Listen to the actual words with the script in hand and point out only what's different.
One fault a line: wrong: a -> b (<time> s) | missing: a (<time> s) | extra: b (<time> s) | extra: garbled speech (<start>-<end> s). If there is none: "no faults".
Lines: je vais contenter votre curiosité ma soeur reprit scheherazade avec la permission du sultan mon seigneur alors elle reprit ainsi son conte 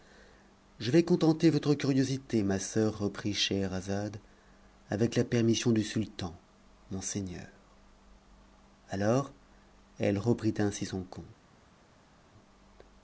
no faults